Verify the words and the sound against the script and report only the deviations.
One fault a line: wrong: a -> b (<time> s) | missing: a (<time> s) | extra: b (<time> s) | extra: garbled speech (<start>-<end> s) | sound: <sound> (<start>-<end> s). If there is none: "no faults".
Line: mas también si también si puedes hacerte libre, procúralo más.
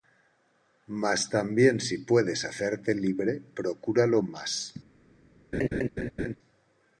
missing: también si (2.0 s)
sound: laugh (5.5-6.3 s)